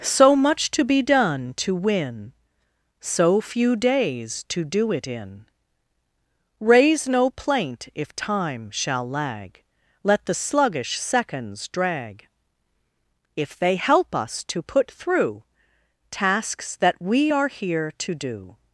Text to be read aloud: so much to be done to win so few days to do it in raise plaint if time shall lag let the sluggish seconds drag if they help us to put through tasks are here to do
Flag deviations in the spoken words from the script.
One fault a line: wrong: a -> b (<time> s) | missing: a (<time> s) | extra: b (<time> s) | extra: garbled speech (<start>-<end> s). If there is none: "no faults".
extra: no (7.1 s)
extra: that we (16.8 s)